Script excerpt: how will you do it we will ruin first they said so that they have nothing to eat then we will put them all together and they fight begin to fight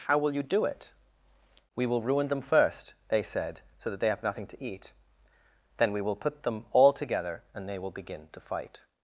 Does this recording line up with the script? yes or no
no